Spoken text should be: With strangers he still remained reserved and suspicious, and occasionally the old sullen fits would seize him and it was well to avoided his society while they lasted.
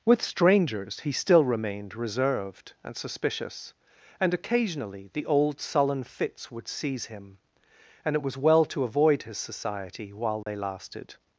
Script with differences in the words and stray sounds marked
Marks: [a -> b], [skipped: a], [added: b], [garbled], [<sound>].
With strangers he still remained reserved and suspicious, and occasionally the old sullen fits would seize him and it was well to [avoided -> avoid] his society while they [dropout] lasted.